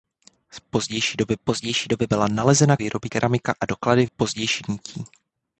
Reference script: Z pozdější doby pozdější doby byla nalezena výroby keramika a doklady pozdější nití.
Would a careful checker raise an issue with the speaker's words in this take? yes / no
no